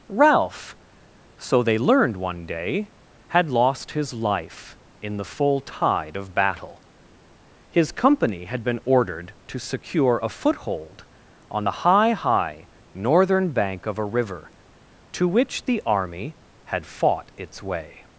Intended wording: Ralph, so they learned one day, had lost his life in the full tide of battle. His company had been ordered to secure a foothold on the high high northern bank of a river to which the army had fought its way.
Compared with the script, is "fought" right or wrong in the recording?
right